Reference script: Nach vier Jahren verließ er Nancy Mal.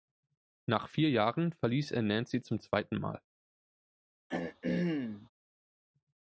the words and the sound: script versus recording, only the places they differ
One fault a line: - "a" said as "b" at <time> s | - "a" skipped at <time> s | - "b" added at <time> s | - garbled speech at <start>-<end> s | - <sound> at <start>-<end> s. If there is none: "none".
- "zum zweiten" added at 2.4 s
- throat clearing at 4.3-5.3 s